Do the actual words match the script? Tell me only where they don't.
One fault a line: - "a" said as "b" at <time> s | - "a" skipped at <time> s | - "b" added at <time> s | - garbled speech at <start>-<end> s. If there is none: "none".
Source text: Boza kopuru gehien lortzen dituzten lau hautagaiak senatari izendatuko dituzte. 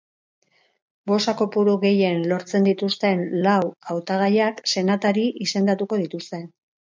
none